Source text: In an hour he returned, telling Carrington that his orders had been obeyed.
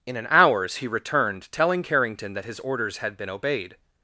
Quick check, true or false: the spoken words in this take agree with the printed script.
false